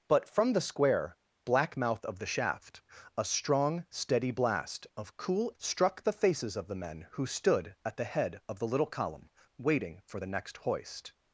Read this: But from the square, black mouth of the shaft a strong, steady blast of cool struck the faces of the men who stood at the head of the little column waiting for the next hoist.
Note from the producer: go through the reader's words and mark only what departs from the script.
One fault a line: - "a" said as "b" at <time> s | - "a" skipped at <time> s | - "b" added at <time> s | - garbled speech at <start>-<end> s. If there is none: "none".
none